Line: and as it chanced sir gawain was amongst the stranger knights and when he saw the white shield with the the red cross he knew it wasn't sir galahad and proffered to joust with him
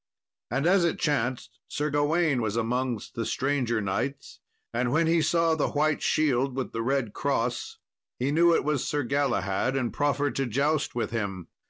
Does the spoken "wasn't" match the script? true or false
false